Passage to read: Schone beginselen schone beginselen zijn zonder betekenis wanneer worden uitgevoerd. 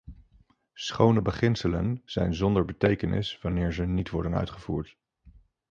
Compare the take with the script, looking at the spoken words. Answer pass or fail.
fail